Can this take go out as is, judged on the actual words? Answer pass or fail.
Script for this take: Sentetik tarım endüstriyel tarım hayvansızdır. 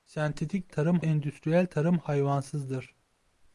pass